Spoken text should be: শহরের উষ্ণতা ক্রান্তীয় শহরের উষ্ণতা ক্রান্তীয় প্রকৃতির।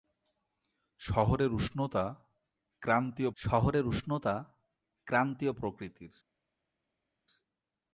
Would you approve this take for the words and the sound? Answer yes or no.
yes